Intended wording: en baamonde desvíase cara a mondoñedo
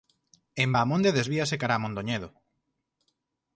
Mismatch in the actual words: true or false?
false